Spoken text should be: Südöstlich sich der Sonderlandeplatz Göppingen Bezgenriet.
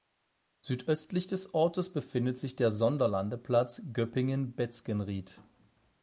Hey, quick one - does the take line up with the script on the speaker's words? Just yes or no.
no